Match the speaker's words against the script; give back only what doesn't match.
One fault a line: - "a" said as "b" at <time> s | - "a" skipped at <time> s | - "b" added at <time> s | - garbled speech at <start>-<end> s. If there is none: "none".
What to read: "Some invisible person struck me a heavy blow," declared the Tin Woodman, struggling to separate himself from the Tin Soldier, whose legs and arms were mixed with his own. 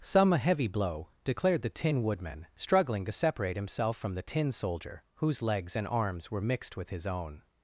- "invisible person struck me" skipped at 0.3 s